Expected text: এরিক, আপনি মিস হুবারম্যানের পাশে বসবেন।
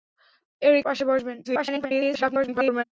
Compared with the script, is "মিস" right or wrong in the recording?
wrong